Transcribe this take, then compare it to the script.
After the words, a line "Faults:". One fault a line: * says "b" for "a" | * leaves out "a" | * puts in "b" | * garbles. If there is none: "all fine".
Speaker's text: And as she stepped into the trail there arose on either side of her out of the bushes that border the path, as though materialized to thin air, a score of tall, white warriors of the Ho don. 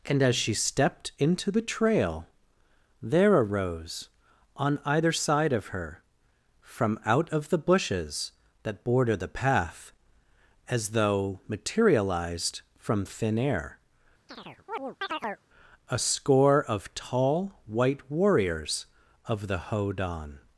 And as she stepped into the trail there arose on either side of her from out of the bushes that border the path, as though materialized from thin air, a score of tall, white warriors of the Ho don.
Faults:
* puts in "from"
* says "from" for "to"